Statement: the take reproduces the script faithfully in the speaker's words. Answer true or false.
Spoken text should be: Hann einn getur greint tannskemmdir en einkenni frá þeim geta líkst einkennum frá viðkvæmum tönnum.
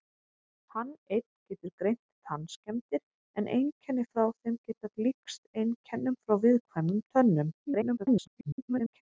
false